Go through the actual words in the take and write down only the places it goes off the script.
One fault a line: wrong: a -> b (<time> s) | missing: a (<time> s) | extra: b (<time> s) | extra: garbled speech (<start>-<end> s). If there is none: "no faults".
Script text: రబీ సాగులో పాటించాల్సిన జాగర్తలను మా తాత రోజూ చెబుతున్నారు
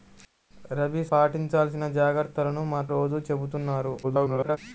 missing: సాగులో (1.0 s)
missing: తాత (2.8 s)
extra: garbled speech (4.0-4.6 s)